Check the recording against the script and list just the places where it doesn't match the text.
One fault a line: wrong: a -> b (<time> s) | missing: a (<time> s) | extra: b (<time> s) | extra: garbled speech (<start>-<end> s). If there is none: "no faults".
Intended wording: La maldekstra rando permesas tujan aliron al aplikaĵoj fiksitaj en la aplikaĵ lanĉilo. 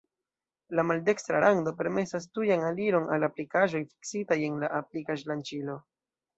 no faults